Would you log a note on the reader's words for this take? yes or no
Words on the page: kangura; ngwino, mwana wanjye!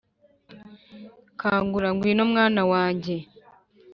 no